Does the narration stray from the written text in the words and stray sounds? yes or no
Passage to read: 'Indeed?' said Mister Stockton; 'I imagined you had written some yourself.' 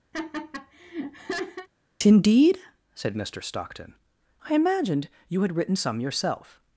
yes